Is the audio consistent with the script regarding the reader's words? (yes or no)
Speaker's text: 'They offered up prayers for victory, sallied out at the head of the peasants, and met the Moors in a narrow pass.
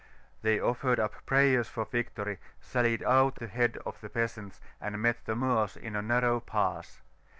no